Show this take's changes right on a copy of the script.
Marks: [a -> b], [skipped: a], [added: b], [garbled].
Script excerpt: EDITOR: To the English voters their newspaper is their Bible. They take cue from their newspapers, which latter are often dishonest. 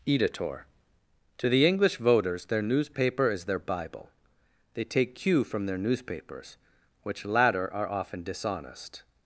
EDITOR: To the English voters their newspaper is their Bible. They take cue from their newspapers, which latter are often dishonest.